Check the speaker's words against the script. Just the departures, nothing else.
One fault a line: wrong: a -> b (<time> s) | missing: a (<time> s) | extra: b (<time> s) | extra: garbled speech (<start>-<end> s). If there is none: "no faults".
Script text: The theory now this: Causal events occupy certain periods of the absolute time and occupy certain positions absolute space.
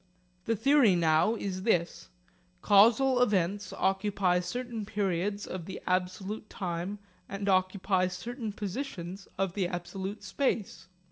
extra: is (1.4 s)
extra: of the (9.4 s)